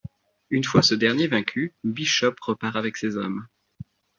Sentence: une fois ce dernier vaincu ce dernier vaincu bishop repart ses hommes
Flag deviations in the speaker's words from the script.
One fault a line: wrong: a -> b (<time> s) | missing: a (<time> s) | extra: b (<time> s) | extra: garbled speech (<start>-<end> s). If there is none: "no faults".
missing: ce dernier vaincu (1.7 s)
extra: avec (2.8 s)